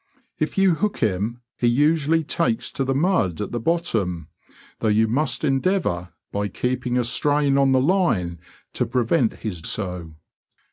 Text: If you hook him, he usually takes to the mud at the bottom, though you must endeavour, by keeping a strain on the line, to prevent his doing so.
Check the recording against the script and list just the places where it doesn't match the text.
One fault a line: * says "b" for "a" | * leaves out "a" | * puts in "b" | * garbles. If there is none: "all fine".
* leaves out "doing"